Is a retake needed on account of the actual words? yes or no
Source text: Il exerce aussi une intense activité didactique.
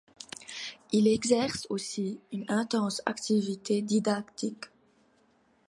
no